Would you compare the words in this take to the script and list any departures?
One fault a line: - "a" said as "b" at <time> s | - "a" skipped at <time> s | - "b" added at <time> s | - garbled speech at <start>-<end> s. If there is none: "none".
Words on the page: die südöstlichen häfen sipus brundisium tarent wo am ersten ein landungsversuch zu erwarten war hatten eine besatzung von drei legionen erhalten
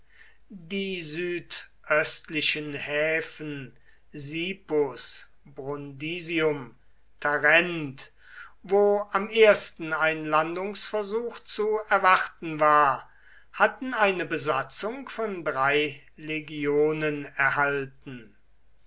none